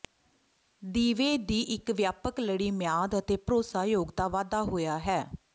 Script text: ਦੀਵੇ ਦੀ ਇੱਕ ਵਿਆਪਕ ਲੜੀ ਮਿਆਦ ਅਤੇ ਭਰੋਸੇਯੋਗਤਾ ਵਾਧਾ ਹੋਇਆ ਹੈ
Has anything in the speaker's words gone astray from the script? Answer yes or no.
no